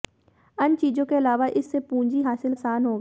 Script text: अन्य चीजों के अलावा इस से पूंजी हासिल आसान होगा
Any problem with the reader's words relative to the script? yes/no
no